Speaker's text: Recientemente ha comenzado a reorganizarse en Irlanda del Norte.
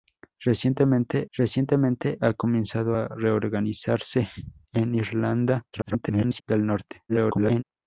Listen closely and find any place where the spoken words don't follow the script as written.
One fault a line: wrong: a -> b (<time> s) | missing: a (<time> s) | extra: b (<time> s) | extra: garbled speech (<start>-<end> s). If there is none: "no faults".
extra: recientemente (1.3 s)
extra: garbled speech (5.7-6.4 s)
extra: garbled speech (7.1-7.6 s)